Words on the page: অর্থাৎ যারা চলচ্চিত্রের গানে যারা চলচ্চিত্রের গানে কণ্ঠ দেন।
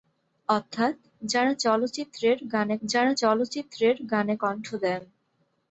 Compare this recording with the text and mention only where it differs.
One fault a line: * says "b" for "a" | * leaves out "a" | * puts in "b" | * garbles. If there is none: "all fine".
all fine